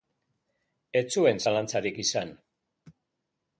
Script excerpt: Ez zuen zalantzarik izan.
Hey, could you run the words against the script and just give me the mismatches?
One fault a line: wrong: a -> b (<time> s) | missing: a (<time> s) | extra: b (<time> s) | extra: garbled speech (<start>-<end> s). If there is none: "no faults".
no faults